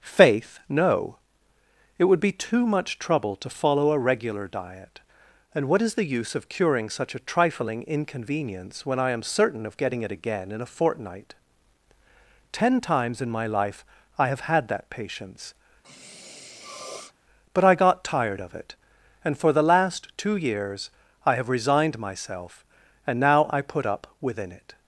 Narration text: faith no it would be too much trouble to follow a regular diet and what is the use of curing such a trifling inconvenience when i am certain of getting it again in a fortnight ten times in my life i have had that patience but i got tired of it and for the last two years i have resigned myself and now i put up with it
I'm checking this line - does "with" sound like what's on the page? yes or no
no